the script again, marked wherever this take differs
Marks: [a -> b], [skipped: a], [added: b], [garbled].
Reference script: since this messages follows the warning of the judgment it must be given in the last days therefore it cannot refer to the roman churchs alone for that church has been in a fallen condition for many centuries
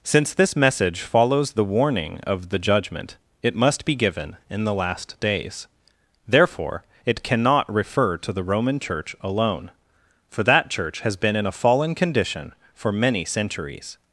since this [messages -> message] follows the warning of the judgment it must be given in the last days therefore it cannot refer to the roman [churchs -> church] alone for that church has been in a fallen condition for many centuries